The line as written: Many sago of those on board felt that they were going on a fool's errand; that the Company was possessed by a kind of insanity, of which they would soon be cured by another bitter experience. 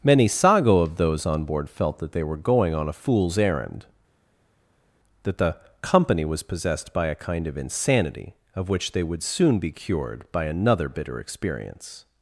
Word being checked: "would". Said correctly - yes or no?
yes